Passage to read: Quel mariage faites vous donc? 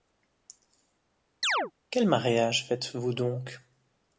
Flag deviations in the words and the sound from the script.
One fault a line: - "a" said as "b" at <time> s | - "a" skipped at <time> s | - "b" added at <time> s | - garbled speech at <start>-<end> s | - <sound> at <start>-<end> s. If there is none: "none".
- chirp at 1.4-1.7 s